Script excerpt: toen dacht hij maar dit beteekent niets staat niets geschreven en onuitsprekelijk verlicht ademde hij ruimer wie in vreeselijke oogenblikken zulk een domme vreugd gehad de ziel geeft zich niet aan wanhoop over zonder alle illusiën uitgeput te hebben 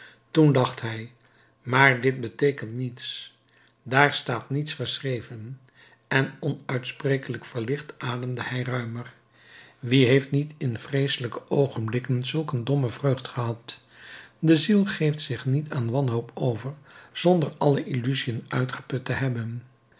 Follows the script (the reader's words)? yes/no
no